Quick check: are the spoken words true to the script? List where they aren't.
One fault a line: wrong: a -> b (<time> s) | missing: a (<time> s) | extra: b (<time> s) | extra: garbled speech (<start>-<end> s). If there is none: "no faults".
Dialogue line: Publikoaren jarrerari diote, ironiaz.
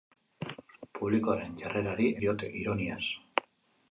no faults